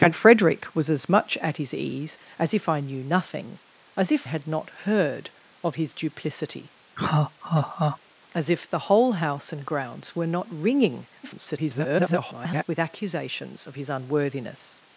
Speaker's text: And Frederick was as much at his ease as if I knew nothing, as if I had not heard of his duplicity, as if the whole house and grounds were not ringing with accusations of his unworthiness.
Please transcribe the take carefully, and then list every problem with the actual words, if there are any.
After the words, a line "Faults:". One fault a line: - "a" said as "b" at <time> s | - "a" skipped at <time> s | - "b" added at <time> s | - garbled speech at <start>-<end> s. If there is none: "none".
And Frederick was as much at his ease as if I knew nothing, as if had not heard of his duplicity, as if the whole house and grounds were not ringing [garbled] with accusations of his unworthiness.
Faults:
- "I" skipped at 4.3 s
- garbled speech at 11.2-12.6 s